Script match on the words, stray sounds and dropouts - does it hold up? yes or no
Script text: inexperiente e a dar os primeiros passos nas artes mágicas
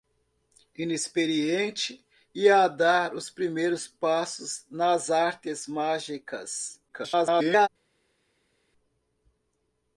no